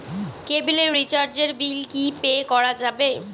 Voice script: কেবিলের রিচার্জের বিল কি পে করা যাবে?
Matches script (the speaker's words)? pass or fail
pass